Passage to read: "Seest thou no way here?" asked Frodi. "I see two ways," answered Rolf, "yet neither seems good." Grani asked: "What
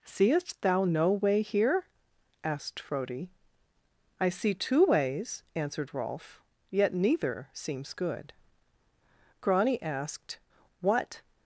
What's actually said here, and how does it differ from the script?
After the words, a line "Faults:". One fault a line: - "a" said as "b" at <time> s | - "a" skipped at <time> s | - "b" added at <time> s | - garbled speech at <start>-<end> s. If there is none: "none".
"Seest thou no way here?" asked Frodi. "I see two ways," answered Rolf, "yet neither seems good." Grani asked: "What
Faults:
none